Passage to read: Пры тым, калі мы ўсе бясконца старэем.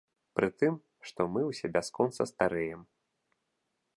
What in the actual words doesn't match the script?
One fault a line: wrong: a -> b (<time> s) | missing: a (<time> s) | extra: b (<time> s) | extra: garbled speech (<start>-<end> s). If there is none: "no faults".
wrong: калі -> што (1.1 s)